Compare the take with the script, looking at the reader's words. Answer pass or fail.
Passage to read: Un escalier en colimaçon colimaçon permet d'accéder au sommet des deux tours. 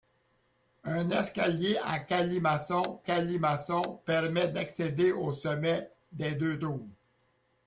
pass